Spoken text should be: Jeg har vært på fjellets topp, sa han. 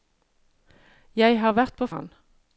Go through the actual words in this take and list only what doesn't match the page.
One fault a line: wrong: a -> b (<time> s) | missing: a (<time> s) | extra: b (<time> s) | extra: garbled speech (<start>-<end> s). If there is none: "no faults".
missing: fjellets topp sa (1.9 s)